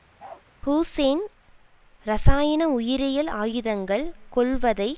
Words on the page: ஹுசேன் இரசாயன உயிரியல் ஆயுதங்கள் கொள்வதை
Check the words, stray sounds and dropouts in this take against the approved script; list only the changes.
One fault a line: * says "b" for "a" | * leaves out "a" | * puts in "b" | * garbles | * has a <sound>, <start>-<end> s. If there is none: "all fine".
* has a bark, 0.2-0.4 s